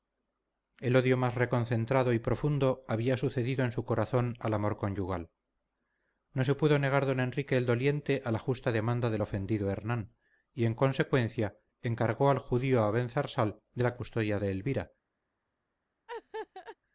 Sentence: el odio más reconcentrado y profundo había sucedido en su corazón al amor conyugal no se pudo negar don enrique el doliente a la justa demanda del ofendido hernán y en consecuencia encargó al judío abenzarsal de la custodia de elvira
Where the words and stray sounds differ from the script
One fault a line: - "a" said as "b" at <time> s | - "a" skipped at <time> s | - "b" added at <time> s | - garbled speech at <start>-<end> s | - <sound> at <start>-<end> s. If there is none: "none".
- laugh at 16.1-16.8 s